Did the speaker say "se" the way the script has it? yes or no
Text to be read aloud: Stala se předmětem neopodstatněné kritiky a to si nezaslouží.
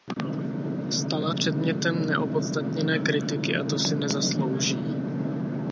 no